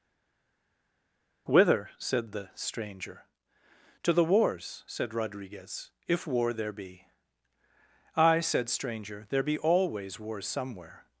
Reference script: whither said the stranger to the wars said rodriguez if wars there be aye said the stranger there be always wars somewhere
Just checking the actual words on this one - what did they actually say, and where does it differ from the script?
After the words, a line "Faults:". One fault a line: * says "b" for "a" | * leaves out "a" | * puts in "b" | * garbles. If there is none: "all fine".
whither said the stranger to the wars said rodriguez if war there be aye said stranger there be always wars somewhere
Faults:
* says "war" for "wars"
* leaves out "the"